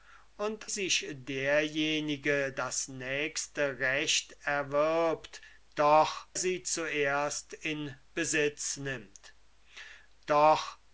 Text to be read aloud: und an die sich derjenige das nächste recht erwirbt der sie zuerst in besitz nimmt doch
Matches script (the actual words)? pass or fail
fail